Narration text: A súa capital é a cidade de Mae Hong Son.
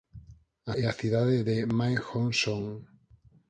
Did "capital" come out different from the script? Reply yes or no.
yes